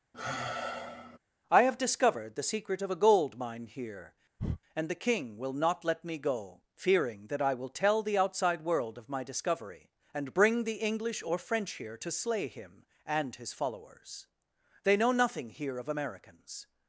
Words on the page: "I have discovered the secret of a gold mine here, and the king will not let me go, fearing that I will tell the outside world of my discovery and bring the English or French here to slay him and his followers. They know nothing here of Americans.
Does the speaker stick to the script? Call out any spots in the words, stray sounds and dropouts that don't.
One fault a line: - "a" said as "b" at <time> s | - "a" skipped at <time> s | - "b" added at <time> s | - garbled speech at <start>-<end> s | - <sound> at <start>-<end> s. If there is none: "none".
- sigh at 0.1-1.2 s
- breath at 4.4-4.6 s